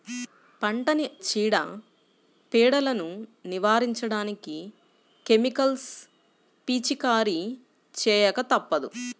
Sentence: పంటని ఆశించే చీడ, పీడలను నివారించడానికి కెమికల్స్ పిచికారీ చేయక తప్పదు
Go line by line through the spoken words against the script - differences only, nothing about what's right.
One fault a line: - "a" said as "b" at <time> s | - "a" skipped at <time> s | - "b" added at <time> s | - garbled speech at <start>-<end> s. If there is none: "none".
- "ఆశించే" skipped at 1.1 s